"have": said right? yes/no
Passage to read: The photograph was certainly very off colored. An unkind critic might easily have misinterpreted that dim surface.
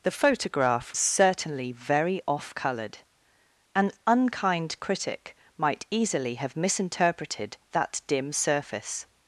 yes